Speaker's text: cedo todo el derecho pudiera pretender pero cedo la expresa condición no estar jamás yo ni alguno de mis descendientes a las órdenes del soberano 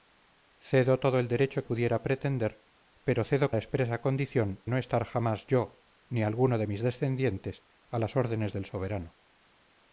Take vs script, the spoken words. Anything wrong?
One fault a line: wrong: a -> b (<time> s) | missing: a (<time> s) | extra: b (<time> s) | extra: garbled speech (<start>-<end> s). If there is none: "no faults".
no faults